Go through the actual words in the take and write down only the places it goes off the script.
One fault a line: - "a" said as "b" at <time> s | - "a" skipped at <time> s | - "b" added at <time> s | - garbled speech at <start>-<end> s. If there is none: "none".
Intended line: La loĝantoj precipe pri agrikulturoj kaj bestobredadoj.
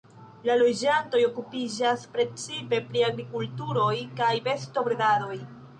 - "okupiĝas" added at 1.3 s